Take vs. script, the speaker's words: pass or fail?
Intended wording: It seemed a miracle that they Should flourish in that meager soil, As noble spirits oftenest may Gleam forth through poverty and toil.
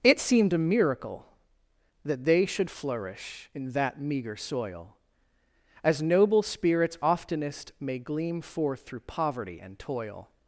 pass